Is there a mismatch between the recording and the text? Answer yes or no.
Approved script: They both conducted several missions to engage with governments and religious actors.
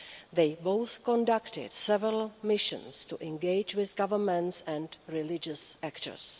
no